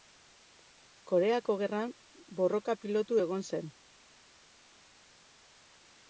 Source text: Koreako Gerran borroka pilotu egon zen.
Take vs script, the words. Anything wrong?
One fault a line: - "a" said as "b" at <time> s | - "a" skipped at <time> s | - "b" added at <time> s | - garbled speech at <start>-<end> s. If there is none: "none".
none